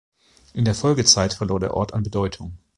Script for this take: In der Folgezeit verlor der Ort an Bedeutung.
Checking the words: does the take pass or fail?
pass